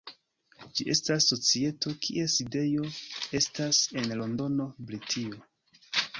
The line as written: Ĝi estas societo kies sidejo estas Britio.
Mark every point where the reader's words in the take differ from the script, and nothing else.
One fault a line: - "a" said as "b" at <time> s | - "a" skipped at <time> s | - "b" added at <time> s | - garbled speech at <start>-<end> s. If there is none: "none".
- "en Londono" added at 4.0 s